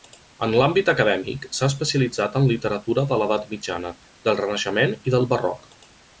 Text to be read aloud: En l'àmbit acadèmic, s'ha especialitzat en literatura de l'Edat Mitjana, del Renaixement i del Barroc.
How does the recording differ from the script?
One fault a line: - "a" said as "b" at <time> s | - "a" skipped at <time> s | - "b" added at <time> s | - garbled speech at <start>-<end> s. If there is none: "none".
none